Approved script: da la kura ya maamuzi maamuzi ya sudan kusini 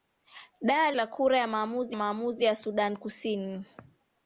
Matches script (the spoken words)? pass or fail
pass